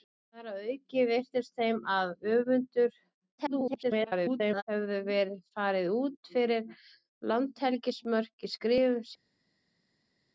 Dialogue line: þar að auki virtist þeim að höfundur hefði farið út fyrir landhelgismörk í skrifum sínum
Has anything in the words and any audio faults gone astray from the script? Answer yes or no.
yes